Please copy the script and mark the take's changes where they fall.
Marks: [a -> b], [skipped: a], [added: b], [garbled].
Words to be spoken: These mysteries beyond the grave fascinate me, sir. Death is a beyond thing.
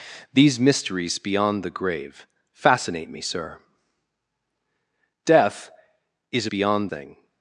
These mysteries beyond the grave fascinate me, sir. Death is a beyond thing.